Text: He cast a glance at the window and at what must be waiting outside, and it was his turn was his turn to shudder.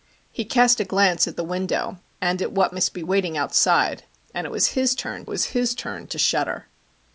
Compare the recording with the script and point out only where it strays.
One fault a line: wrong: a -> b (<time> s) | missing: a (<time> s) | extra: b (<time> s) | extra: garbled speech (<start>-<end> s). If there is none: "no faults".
no faults